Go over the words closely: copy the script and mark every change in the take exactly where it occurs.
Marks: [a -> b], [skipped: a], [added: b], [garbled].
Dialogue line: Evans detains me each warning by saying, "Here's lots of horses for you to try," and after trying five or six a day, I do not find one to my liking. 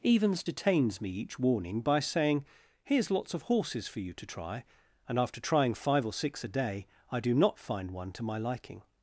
Evans detains me each warning by saying, "Here's lots of horses for you to try," and after trying five or six a day, I do not find one to my liking.